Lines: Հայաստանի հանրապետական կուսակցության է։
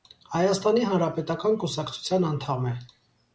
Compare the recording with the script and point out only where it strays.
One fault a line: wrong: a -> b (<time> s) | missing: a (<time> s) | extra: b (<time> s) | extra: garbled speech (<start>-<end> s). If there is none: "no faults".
extra: անդամ (2.3 s)